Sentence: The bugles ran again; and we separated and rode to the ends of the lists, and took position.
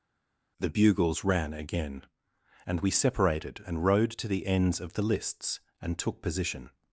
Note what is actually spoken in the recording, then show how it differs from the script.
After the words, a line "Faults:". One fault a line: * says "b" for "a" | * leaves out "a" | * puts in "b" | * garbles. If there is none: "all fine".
The bugles ran again; and we separated and rode to the ends of the lists, and took position.
Faults:
all fine